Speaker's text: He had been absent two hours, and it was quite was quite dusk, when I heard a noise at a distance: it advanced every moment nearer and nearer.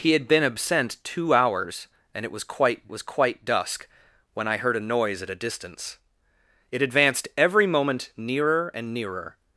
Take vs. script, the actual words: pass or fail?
pass